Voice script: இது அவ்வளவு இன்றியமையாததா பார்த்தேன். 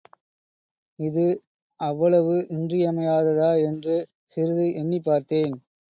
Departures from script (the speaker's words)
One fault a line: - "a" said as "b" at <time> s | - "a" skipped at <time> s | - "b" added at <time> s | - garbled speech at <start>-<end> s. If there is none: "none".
- "என்று சிறிது எண்ணிப்" added at 3.6 s